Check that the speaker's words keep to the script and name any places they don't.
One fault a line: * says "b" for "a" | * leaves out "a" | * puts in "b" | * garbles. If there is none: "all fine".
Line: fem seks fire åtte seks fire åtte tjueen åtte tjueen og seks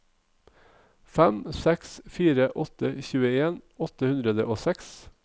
* leaves out "seks fire åtte"
* says "hundre" for "tjueen"